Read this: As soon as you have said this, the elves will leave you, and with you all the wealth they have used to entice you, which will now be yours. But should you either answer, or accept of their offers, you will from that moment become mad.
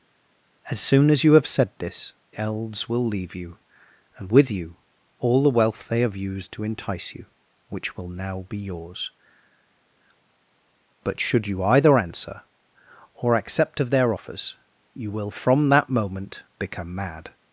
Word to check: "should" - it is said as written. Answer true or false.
true